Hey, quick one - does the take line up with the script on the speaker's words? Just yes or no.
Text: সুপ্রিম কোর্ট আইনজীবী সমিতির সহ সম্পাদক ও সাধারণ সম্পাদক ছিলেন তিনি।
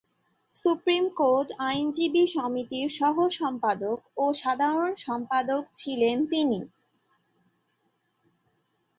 yes